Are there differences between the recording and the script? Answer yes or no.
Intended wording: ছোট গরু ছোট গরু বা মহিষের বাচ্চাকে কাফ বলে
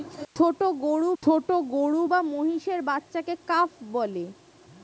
no